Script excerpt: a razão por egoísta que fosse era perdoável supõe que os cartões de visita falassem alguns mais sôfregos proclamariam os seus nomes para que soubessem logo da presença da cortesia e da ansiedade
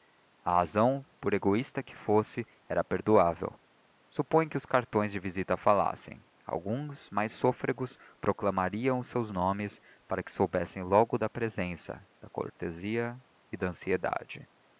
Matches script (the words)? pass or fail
pass